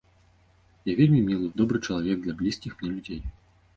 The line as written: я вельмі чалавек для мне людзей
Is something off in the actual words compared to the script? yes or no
yes